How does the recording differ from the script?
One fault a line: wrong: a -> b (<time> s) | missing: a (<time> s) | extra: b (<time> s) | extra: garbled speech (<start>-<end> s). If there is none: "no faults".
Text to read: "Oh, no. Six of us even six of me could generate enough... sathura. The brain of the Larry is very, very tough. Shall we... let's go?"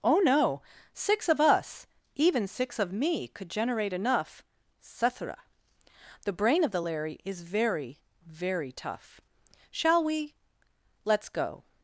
no faults